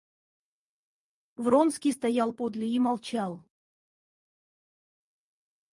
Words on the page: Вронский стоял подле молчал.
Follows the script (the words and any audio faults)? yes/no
no